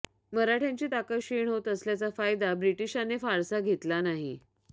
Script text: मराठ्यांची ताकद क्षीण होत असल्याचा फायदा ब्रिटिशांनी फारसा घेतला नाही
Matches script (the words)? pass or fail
pass